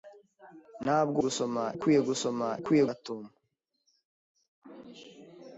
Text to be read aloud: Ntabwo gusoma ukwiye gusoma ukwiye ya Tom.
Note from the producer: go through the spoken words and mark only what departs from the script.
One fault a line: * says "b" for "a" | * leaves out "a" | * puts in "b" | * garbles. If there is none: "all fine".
all fine